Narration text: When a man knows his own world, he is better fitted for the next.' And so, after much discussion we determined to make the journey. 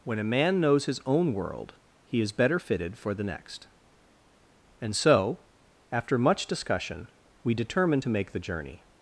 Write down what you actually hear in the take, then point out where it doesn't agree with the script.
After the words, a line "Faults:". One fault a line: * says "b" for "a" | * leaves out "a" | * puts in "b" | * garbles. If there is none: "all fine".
When a man knows his own world, he is better fitted for the next.' And so, after much discussion we determined to make the journey.
Faults:
all fine